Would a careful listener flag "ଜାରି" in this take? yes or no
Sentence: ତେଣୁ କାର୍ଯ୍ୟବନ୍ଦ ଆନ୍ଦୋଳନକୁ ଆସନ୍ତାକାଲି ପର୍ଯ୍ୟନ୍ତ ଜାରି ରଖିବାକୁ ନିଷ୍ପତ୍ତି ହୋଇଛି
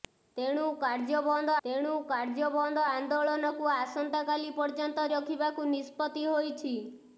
yes